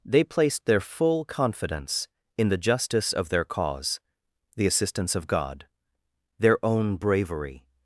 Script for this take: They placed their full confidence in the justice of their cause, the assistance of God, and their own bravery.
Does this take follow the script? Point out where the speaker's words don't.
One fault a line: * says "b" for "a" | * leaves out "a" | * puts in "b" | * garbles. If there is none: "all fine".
* leaves out "and"